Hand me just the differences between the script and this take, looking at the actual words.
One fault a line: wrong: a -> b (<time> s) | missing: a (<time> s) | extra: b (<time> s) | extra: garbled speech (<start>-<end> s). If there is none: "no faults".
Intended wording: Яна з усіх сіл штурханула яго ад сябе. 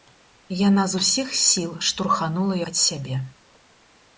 missing: яго (2.6 s)